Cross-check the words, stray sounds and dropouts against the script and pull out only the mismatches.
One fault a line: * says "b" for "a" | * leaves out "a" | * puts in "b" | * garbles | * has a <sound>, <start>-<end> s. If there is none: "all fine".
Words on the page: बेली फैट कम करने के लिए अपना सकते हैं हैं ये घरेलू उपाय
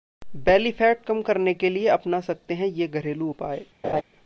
* leaves out "हैं"
* has a laugh, 3.8-4.0 s